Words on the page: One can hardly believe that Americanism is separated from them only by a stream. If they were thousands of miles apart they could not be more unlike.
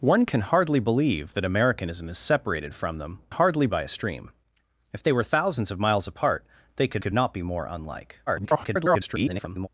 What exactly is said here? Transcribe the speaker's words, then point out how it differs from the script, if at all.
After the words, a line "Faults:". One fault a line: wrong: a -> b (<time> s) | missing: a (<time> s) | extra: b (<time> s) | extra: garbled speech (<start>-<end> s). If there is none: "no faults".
One can hardly believe that Americanism is separated from them hardly by a stream. If they were thousands of miles apart they could could not be more unlike. [garbled]
Faults:
wrong: only -> hardly (3.3 s)
extra: could (7.0 s)
extra: garbled speech (8.3-9.7 s)